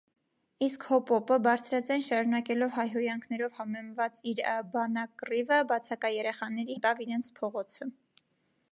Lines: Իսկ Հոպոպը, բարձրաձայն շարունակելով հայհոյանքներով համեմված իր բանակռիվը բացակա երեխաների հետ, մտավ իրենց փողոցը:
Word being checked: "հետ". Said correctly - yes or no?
no